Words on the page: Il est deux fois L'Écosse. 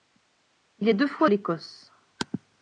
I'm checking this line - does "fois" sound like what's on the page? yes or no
yes